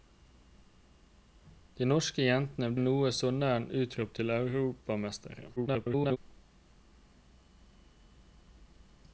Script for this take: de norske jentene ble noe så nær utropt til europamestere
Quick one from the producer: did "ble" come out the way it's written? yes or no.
no